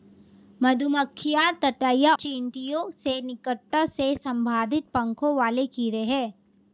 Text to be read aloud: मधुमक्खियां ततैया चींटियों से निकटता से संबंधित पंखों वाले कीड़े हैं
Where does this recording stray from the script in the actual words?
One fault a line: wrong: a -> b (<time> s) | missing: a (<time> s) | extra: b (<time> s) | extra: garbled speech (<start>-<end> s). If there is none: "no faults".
no faults